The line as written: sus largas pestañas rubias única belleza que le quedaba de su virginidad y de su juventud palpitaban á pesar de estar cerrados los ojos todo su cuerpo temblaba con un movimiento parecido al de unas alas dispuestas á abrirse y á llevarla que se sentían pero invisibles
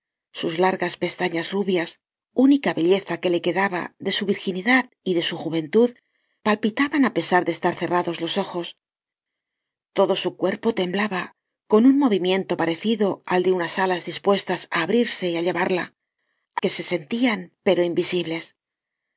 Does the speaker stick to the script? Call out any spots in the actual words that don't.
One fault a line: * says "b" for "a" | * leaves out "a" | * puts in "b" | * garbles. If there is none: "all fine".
all fine